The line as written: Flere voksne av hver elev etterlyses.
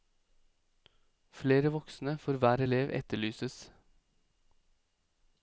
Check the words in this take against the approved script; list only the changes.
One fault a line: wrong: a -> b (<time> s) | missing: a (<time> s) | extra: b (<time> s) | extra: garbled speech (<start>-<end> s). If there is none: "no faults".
wrong: av -> for (2.2 s)